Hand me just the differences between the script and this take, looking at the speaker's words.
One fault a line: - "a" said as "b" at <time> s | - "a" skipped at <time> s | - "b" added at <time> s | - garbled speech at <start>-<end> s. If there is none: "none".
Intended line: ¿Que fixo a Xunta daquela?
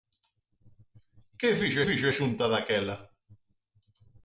- "fixo" added at 1.9 s